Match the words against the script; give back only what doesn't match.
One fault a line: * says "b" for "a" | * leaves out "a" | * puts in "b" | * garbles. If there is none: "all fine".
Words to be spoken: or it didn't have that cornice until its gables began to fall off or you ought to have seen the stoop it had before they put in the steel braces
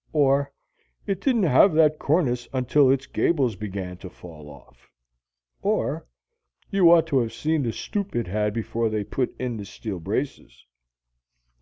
all fine